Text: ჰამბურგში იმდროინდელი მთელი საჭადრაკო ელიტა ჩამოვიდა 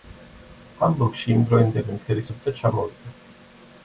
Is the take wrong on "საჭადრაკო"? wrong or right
wrong